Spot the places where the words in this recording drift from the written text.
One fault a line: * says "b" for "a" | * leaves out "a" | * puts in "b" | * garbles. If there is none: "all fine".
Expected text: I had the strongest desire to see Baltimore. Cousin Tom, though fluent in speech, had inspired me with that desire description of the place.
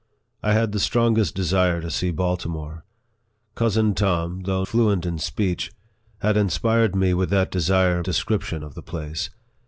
all fine